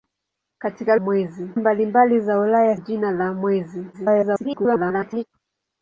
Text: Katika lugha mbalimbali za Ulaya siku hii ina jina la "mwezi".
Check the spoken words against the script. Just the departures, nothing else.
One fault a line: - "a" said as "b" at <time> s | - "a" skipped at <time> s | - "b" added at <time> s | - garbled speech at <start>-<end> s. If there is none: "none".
- "lugha" said as "mwezi" at 1.0 s
- "siku hii ina" skipped at 2.8 s
- garbled speech at 3.9-5.2 s